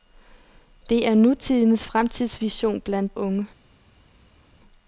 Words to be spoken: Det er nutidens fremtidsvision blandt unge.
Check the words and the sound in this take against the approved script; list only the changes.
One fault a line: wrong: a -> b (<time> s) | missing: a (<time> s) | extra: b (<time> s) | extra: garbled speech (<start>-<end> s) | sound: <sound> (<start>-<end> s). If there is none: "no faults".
no faults